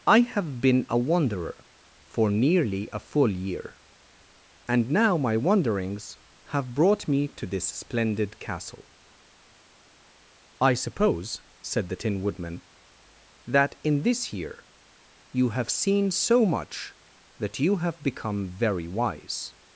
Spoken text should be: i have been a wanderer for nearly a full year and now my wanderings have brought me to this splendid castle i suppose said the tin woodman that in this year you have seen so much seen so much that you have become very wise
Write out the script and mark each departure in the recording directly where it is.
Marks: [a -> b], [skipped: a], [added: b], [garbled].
i have been a wanderer for nearly a full year and now my wanderings have brought me to this splendid castle i suppose said the tin woodman that in this year you have seen so much [skipped: seen so much] that you have become very wise